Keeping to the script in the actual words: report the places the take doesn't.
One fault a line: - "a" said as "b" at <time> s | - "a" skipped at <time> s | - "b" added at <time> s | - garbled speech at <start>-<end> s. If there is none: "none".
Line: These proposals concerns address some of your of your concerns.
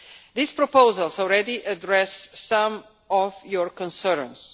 - "concerns" said as "already" at 1.2 s
- "of your" skipped at 3.7 s